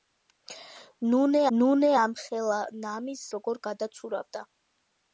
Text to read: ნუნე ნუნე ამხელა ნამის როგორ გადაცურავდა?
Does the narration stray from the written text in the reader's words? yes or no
no